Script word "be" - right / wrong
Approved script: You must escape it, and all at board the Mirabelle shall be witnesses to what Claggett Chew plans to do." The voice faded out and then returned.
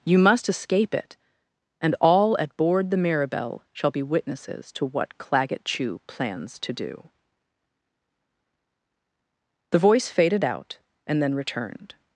right